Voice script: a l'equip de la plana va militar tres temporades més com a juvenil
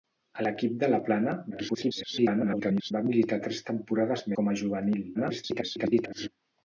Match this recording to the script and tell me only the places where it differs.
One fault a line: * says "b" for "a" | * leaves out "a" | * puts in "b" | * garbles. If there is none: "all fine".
* garbles
* leaves out "més"
* garbles